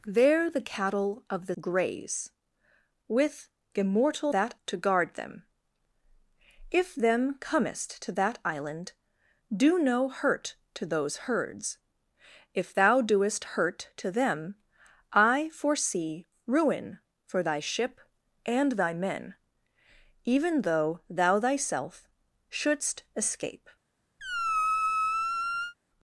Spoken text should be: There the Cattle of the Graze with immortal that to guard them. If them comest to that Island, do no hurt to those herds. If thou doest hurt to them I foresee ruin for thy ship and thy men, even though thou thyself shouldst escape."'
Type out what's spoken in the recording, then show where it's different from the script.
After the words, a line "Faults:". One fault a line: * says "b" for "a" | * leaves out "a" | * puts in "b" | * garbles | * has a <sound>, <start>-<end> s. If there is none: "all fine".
There the Cattle of the Graze with immortal that to guard them. If them comest to that Island, do no hurt to those herds. If thou doest hurt to them I foresee ruin for thy ship and thy men, even though thou thyself shouldst escape."'
Faults:
* has a squeak, 24.2-25.7 s